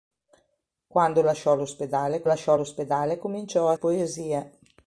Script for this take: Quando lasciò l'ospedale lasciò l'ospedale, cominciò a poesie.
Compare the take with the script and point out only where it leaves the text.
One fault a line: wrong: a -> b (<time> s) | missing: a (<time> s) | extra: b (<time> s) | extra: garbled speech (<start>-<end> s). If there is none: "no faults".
no faults